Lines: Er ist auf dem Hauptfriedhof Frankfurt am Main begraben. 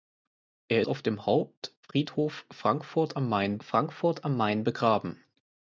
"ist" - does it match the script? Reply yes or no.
no